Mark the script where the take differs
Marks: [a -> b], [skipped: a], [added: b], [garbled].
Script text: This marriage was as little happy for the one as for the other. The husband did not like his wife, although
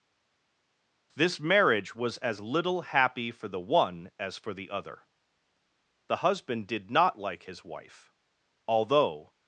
This marriage was as little happy for the one as for the other. The husband did not like his wife, although